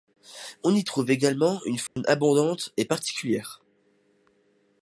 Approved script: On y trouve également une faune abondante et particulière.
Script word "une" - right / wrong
right